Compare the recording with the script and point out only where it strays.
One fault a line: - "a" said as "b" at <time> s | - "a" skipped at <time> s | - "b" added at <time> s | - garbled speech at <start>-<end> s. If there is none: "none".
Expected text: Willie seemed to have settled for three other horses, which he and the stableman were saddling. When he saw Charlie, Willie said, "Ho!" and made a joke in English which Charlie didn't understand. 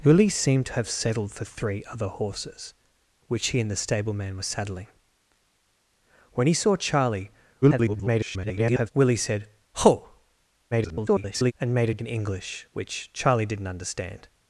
- garbled speech at 7.6-8.9 s
- garbled speech at 10.7-11.5 s
- "joke" skipped at 12.0 s